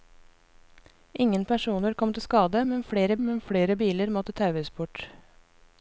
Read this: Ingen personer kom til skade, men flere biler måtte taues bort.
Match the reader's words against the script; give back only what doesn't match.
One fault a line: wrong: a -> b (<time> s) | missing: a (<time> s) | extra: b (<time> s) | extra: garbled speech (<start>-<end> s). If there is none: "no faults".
extra: men flere (3.3 s)